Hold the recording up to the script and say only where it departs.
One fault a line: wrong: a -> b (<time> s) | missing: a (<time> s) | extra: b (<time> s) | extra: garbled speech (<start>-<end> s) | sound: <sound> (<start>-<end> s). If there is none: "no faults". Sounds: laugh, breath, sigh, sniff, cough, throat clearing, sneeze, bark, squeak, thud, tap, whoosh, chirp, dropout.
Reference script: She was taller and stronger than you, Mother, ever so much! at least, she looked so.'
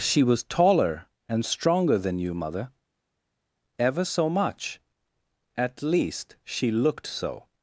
no faults